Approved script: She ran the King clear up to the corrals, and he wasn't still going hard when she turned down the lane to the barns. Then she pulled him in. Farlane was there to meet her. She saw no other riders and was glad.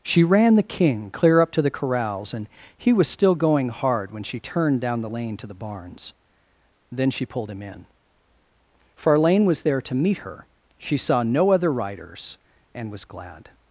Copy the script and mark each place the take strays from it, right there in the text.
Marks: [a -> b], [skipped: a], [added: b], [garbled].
She ran the King clear up to the corrals, and he [wasn't -> was] still going hard when she turned down the lane to the barns. Then she pulled him in. Farlane was there to meet her. She saw no other riders and was glad.